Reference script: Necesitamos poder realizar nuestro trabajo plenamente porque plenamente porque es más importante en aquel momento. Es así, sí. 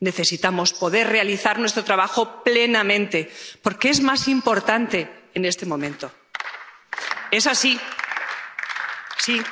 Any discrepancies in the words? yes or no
yes